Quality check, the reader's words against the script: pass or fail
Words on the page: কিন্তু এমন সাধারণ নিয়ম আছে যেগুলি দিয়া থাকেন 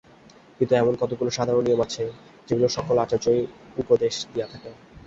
fail